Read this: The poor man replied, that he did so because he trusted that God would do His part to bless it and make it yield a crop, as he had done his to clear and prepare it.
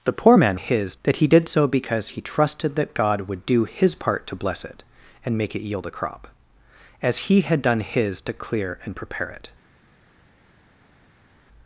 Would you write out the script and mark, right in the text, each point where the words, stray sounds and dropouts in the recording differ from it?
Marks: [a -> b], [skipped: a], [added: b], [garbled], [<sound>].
The poor man [replied, -> his] that he did so because he trusted that God would do His part to bless it and make it yield a crop, as he had done his to clear and prepare it.